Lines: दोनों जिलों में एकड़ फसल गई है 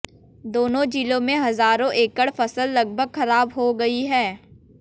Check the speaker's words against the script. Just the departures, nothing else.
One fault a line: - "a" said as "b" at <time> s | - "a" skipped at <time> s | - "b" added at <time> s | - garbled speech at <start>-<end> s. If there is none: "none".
- "हजारों" added at 1.4 s
- "लगभग खराब हो" added at 2.7 s